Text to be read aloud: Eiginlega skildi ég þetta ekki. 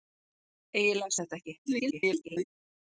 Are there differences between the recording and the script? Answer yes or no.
yes